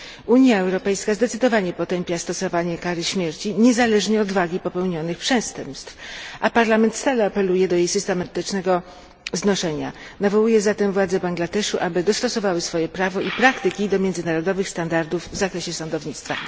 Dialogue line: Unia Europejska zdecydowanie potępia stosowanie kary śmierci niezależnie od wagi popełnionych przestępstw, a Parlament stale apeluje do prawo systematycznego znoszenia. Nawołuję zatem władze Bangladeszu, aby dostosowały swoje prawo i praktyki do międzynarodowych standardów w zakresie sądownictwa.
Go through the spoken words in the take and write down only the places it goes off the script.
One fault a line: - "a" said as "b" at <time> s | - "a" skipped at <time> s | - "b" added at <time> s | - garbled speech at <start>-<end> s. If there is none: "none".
- "prawo" said as "jej" at 7.7 s